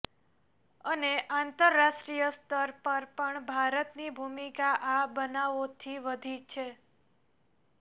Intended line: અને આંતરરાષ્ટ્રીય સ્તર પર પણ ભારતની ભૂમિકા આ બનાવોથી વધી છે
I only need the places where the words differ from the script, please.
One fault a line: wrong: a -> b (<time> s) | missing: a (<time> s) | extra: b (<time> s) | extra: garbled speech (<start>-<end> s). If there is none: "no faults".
no faults